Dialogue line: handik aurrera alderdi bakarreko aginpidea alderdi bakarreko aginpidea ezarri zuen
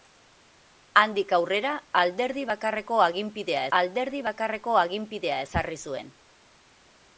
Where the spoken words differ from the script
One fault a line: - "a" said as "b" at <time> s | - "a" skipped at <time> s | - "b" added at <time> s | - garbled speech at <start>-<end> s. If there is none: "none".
none